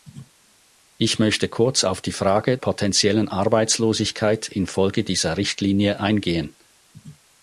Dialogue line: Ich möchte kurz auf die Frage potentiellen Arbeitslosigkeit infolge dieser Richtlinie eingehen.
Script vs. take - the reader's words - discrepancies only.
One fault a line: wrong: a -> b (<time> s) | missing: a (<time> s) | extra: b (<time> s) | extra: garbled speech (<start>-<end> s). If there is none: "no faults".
no faults